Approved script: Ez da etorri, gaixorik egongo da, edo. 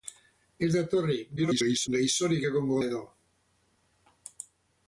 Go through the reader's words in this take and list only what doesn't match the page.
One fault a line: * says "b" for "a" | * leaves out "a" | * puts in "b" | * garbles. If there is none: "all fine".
* garbles
* leaves out "da"